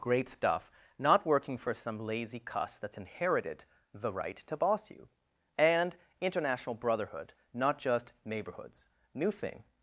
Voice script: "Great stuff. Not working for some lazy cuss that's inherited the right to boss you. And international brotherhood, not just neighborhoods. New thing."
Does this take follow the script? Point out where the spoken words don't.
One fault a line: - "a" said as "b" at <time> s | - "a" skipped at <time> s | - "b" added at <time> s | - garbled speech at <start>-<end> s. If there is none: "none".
none